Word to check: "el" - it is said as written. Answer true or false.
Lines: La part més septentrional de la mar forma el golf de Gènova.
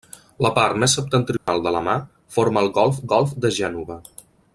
true